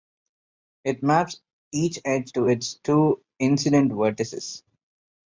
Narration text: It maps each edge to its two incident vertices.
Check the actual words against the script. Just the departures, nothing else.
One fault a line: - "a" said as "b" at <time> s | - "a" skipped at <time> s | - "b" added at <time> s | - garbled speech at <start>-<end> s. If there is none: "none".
none